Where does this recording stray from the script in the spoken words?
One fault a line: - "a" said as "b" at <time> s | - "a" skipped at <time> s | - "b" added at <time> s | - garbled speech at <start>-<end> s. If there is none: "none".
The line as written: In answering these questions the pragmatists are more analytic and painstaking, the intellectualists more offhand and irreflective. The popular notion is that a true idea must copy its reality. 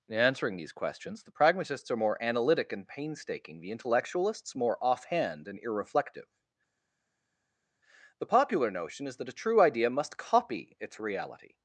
none